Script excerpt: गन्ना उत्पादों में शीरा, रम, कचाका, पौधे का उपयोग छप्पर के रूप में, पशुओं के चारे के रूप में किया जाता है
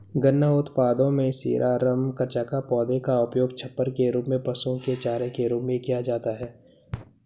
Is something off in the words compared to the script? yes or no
no